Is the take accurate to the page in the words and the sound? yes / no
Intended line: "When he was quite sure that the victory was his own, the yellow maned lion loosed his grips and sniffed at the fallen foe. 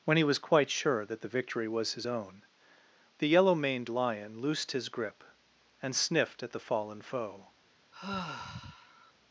no